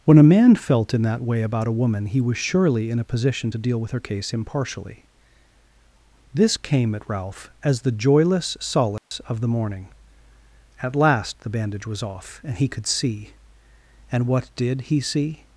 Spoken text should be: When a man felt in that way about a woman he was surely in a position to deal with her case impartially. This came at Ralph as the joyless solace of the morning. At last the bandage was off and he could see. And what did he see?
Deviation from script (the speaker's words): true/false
false